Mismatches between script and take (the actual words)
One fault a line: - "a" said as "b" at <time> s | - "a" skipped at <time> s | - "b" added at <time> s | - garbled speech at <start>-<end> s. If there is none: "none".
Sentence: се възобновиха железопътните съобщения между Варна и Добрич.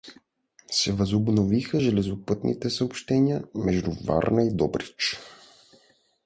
none